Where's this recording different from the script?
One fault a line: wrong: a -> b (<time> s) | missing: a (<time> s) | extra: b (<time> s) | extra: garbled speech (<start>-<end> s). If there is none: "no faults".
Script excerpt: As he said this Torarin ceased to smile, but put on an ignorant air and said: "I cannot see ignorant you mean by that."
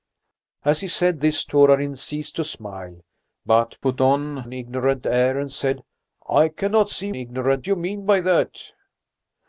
no faults